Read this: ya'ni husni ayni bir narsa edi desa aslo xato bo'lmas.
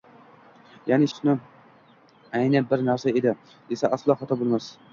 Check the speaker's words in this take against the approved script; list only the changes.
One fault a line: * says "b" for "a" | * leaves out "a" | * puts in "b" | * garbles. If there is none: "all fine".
all fine